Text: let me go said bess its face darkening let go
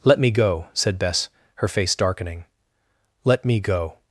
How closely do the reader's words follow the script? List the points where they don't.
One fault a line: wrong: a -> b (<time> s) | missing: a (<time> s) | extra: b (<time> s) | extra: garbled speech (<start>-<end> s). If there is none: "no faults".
wrong: its -> her (1.6 s)
extra: me (3.5 s)